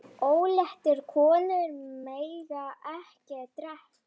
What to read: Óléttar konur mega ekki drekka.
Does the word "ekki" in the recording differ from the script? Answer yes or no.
no